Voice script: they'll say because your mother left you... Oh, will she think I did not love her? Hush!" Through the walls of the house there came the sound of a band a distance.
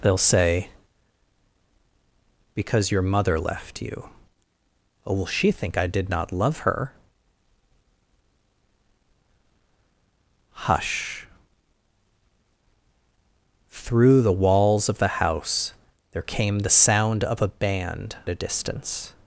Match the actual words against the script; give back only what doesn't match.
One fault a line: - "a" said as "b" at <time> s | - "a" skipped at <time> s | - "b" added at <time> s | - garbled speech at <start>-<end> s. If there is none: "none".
none